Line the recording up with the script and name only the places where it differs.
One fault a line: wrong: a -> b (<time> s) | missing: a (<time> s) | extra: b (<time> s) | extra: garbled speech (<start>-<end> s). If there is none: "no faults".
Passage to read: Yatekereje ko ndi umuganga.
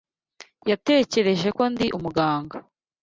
no faults